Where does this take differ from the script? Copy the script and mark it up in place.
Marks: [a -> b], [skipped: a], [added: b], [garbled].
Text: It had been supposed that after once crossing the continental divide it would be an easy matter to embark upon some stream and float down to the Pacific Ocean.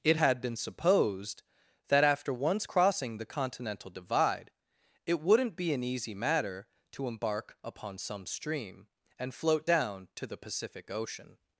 It had been supposed that after once crossing the continental divide it [would -> wouldn't] be an easy matter to embark upon some stream and float down to the Pacific Ocean.